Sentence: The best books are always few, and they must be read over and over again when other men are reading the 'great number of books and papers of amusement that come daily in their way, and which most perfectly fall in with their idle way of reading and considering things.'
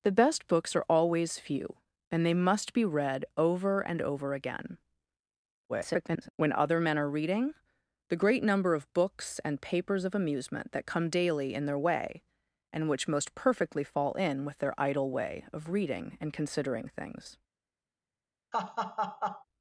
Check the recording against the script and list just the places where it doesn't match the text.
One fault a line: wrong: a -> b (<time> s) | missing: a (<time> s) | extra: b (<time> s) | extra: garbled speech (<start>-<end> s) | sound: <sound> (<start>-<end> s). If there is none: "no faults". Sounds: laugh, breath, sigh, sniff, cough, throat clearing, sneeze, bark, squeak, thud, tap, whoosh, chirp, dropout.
extra: garbled speech (5.7-6.3 s)
sound: laugh (18.5-19.4 s)